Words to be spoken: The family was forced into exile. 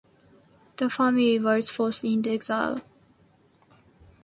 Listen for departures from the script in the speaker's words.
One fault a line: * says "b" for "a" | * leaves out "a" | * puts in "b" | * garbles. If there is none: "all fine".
all fine